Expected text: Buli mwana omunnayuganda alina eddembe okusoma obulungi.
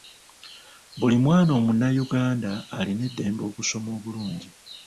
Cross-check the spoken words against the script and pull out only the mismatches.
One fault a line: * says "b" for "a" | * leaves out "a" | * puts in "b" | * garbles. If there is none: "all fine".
all fine